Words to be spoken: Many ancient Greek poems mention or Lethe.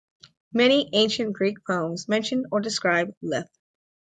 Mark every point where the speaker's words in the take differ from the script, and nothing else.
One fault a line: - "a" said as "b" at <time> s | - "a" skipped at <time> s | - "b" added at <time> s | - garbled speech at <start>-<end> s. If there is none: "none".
- "describe" added at 2.6 s